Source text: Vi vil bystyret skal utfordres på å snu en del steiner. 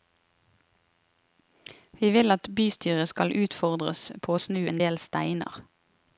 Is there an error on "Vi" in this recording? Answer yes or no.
no